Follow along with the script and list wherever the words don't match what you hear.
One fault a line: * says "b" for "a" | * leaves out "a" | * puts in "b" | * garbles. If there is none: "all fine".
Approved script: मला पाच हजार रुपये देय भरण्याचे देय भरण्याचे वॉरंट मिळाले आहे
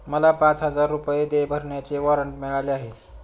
* leaves out "देय भरण्याचे"